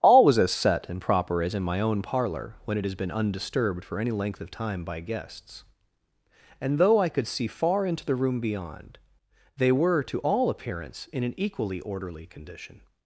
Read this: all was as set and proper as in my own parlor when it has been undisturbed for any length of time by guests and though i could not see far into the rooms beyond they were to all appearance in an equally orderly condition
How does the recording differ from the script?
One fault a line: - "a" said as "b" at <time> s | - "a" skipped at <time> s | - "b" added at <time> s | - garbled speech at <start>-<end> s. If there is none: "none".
- "not" skipped at 7.3 s
- "rooms" said as "room" at 8.2 s